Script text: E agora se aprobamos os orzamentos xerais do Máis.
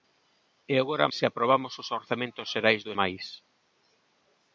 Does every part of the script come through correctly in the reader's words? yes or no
yes